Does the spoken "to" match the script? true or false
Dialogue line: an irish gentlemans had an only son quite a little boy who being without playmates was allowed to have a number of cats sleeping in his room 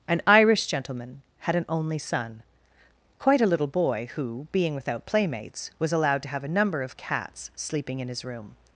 true